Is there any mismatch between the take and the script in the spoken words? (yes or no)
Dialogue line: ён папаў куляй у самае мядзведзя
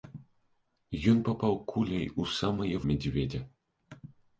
no